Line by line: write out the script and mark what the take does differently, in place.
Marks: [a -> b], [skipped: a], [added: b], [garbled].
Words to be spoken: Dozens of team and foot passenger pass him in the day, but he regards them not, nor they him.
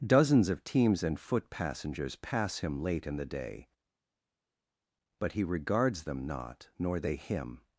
Dozens of [team -> teams] and foot [passenger -> passengers] pass him [added: late] in the day, but he regards them not, nor they him.